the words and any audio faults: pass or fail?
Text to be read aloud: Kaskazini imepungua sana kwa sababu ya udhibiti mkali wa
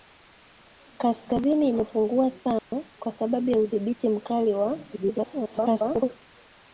fail